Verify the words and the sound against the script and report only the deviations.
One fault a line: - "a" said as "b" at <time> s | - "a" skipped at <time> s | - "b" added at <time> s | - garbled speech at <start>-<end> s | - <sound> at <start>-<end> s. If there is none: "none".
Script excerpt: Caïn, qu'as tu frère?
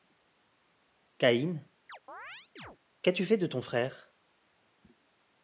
- chirp at 1.9-2.8 s
- "fait de ton" added at 3.3 s